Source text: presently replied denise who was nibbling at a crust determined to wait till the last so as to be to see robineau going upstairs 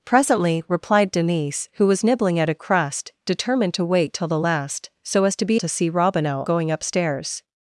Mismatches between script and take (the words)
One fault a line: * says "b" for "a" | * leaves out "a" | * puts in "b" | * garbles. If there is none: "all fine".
all fine